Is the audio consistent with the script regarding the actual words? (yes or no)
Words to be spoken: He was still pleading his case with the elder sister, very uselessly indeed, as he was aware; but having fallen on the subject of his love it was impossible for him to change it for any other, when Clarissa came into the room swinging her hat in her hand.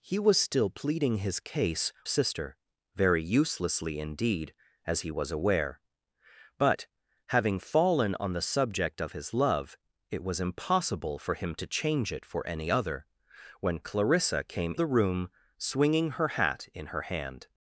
no